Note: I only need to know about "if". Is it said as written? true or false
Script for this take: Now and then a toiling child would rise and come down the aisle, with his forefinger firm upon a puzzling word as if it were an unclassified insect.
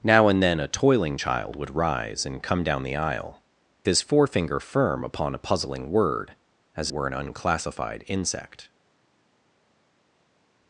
false